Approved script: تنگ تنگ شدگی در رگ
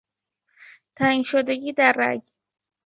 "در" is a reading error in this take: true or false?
false